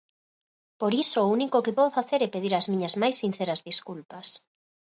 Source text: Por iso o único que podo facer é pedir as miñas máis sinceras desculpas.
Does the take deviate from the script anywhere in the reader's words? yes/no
no